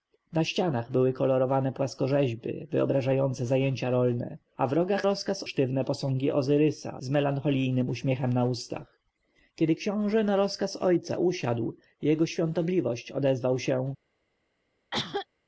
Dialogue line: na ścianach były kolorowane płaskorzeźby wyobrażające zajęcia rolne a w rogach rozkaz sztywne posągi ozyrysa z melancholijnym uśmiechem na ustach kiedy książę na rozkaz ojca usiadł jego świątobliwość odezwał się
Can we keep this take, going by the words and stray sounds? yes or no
no